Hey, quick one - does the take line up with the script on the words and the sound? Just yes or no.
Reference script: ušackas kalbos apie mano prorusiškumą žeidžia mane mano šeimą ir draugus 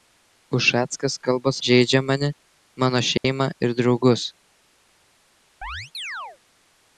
no